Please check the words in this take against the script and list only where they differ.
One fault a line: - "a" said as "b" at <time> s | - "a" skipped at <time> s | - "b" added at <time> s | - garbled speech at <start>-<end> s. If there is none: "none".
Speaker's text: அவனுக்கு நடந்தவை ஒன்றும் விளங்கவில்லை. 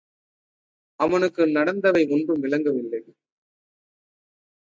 none